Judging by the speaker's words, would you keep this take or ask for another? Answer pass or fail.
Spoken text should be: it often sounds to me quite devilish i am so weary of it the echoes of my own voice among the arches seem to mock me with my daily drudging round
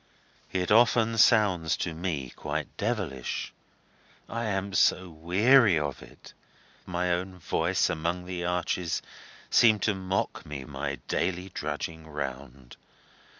fail